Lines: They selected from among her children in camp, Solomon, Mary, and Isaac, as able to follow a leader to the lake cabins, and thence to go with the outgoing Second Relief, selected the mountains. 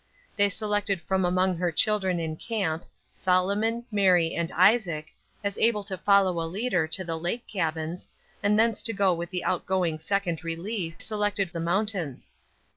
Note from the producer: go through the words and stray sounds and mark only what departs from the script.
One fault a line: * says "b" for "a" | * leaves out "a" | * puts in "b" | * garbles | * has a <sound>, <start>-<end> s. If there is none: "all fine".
all fine